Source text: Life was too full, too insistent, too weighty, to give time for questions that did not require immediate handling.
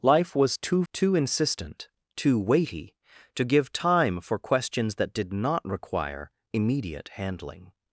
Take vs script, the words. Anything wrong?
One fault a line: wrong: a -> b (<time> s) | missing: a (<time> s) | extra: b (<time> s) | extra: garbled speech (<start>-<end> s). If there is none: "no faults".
missing: full (0.8 s)